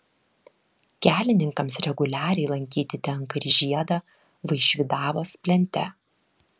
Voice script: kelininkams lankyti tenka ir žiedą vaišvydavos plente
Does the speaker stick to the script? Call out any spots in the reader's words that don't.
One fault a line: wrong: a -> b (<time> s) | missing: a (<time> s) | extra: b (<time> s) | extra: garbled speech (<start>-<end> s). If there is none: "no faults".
extra: reguliariai (1.9 s)